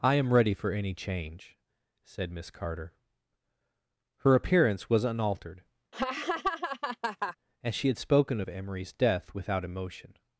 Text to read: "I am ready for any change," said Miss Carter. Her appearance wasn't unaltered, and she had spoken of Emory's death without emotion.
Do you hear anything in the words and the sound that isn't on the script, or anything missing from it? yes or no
yes